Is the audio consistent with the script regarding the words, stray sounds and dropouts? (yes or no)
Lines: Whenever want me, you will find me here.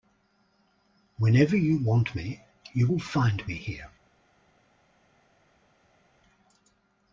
no